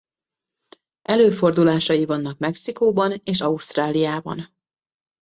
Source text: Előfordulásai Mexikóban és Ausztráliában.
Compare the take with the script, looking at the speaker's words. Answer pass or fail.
fail